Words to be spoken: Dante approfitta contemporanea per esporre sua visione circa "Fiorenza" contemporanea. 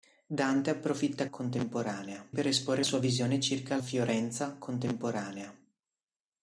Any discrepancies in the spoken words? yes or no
no